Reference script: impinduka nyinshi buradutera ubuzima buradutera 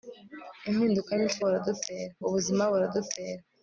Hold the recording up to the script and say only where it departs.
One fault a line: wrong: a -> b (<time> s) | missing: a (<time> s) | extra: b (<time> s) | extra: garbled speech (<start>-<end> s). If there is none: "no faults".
no faults